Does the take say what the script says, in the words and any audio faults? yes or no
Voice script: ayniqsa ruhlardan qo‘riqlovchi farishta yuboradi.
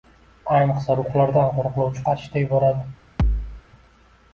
no